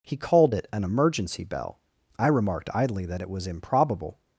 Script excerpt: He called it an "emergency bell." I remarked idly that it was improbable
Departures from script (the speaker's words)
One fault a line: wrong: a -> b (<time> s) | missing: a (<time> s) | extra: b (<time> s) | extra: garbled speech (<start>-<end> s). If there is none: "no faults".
no faults